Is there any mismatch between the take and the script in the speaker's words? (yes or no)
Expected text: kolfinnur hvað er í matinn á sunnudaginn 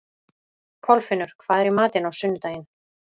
no